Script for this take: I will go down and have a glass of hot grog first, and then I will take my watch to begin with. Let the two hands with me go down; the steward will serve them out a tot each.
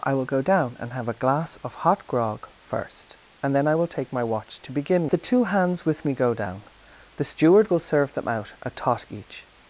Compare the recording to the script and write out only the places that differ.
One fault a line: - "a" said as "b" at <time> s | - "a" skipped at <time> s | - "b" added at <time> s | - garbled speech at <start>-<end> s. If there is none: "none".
- "with Let" skipped at 5.1 s